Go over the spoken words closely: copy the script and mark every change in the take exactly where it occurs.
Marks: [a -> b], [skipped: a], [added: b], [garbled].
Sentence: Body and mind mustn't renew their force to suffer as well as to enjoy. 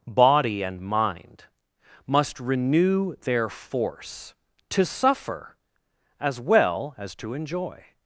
Body and mind [mustn't -> must] renew their force to suffer as well as to enjoy.